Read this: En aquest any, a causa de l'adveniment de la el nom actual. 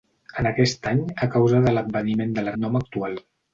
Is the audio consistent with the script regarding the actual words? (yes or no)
yes